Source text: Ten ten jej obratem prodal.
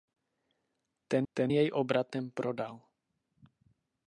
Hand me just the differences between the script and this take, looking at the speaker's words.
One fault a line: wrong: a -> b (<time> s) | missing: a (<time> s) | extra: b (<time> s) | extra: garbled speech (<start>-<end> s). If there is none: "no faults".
no faults